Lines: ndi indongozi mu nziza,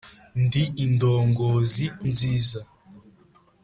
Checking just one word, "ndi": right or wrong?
right